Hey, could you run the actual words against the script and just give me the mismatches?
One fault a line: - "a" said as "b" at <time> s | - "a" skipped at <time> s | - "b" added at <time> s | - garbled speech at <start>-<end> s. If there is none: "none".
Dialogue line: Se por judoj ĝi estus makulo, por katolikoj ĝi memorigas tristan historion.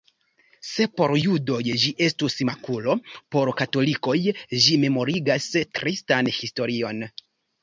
none